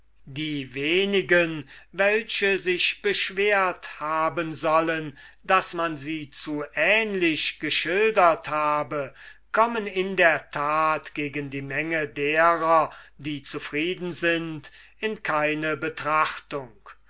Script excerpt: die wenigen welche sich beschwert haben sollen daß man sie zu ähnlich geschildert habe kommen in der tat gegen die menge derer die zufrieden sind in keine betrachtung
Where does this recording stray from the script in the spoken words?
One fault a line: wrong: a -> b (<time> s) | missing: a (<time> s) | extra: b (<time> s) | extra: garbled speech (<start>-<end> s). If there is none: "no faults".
no faults